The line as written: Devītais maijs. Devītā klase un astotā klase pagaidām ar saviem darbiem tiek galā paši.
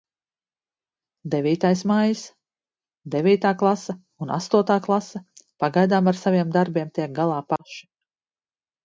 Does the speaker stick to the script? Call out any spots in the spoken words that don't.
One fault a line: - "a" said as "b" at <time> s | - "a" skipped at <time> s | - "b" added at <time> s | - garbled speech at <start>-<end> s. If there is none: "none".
none